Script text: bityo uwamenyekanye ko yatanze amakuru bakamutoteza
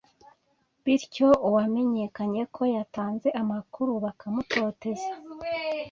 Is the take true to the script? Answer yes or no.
yes